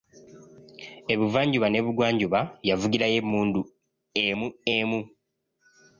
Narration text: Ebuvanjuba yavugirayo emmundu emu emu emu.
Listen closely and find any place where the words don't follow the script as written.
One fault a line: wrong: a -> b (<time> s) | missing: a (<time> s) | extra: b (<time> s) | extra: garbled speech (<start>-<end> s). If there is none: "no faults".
extra: n'ebugwanjuba (1.7 s)
missing: emu (5.0 s)